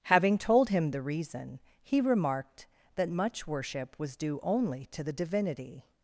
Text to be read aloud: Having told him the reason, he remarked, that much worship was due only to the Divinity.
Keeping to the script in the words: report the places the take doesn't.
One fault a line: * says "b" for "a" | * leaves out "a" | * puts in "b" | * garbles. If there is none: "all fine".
all fine